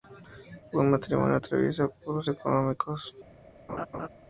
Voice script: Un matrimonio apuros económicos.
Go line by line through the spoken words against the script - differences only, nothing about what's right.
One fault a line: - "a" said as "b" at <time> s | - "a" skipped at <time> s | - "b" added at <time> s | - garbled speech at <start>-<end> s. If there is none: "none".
- "atraviesa" added at 1.3 s